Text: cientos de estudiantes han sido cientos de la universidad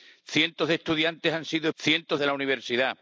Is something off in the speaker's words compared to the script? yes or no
no